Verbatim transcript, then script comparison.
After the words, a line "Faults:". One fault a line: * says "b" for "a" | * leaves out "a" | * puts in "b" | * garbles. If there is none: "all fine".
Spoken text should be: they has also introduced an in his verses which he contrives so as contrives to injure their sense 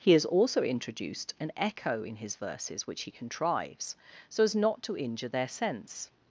he has also introduced an echo in his verses which he contrives so as not to injure their sense
Faults:
* says "he" for "they"
* puts in "echo"
* says "not" for "contrives"